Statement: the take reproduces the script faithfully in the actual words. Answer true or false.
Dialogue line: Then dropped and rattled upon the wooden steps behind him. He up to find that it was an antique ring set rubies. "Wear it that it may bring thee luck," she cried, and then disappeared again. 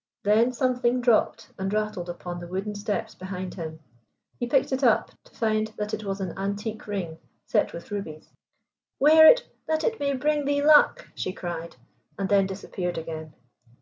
false